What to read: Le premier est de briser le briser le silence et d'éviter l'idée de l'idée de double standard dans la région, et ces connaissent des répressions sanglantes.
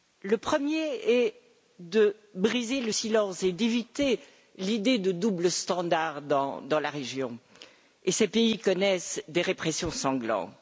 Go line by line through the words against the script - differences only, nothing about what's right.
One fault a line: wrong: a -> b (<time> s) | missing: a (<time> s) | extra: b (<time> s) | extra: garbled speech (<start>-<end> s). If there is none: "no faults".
missing: briser le (2.9 s)
missing: l'idée de (5.1 s)
extra: pays (8.3 s)